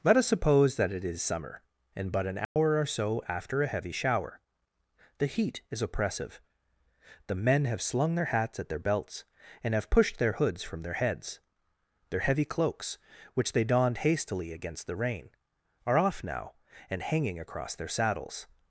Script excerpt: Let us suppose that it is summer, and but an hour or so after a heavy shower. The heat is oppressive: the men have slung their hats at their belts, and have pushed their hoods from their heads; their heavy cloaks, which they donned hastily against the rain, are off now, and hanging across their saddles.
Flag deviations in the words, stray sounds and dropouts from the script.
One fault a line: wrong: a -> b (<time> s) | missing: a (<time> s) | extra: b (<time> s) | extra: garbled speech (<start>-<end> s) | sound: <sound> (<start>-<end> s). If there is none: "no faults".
sound: dropout (2.4-2.6 s)